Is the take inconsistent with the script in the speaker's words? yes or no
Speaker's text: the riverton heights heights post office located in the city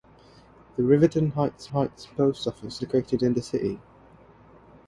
no